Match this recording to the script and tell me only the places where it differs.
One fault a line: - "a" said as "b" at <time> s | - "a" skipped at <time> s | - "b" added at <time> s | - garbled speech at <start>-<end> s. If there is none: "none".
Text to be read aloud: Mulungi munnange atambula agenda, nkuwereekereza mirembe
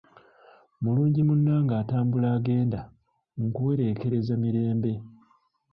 none